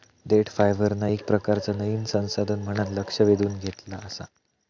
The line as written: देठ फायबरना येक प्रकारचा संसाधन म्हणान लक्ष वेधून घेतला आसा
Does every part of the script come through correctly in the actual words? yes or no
no